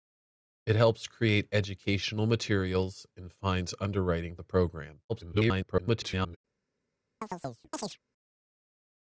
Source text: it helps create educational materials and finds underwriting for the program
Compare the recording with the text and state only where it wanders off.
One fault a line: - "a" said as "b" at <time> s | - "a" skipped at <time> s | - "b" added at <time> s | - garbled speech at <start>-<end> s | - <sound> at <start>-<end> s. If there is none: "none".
- "for" skipped at 4.3 s
- garbled speech at 5.1-6.4 s
- chirp at 7.2-8.0 s